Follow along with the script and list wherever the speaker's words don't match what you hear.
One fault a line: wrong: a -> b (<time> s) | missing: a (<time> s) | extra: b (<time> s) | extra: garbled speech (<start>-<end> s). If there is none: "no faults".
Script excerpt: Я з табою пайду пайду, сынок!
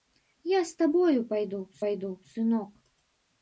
no faults